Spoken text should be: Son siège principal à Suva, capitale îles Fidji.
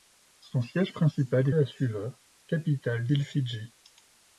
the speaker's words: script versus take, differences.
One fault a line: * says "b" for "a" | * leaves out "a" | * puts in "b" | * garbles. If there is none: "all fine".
all fine